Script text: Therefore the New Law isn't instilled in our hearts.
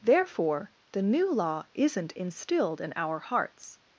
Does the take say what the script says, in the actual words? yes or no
yes